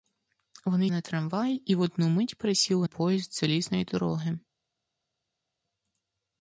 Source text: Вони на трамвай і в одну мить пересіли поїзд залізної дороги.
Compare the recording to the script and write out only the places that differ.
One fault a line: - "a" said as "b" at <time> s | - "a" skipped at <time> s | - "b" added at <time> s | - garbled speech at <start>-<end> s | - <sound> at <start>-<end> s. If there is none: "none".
none